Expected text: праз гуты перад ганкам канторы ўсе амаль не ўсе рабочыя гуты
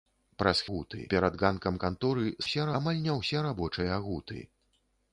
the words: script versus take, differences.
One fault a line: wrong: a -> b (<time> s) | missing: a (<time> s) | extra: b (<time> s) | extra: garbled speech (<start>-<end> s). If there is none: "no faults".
no faults